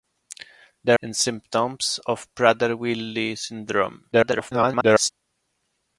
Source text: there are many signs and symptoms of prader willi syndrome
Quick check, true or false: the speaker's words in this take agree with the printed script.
false